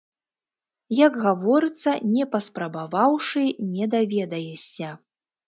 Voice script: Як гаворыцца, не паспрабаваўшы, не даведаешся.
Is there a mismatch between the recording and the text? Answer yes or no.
no